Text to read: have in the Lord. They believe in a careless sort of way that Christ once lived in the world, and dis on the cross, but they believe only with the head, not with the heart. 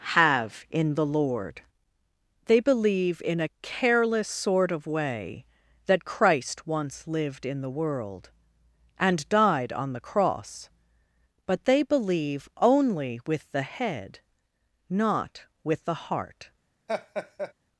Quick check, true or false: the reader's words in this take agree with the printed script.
false